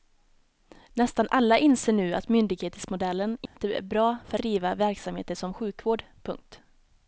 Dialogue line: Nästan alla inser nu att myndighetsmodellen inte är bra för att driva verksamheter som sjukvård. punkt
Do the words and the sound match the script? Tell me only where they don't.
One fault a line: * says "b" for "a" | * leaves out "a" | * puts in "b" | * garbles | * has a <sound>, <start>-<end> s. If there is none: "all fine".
* has a dropout, 3.5-3.6 s
* leaves out "att"